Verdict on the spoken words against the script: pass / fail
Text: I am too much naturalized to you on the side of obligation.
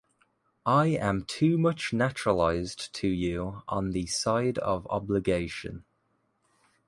pass